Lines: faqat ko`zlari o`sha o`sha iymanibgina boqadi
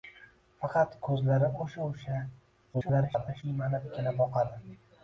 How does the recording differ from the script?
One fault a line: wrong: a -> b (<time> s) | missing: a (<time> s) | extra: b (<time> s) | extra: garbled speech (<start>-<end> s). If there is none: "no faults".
extra: garbled speech (2.7-3.4 s)